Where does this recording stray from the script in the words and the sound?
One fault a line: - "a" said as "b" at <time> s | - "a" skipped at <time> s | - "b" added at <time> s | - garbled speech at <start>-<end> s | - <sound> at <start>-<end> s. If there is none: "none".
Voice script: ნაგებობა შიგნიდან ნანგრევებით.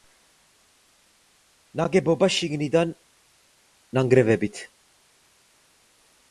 none